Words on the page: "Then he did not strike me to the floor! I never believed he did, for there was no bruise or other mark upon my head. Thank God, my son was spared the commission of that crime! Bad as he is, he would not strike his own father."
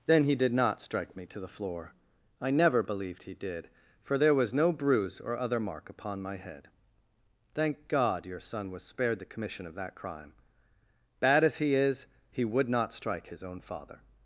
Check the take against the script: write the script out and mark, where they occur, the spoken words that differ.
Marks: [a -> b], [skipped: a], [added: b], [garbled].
"Then he did not strike me to the floor! I never believed he did, for there was no bruise or other mark upon my head. Thank God, [my -> your] son was spared the commission of that crime! Bad as he is, he would not strike his own father."